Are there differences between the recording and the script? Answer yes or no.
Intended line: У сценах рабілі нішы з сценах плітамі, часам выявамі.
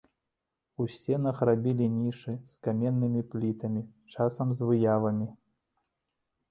yes